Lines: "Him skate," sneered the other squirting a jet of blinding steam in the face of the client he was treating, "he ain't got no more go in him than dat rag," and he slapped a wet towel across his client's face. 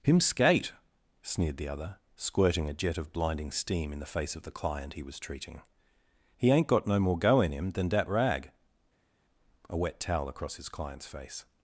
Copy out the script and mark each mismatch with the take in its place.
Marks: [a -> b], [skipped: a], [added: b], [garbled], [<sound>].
"Him skate," sneered the other squirting a jet of blinding steam in the face of the client he was treating, "he ain't got no more go in him than dat rag," [skipped: and he slapped] a wet towel across his client's face.